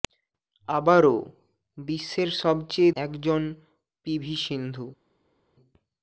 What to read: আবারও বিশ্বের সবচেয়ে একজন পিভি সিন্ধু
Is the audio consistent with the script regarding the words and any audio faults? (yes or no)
yes